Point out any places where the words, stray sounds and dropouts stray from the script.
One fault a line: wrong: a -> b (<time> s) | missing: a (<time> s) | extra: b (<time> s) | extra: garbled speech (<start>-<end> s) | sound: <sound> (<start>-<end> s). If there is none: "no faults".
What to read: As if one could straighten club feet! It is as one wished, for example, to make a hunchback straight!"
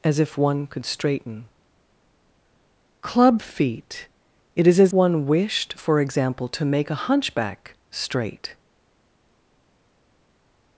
no faults